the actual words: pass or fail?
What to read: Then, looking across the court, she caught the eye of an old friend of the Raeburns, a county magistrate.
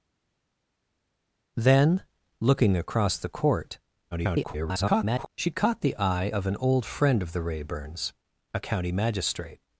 fail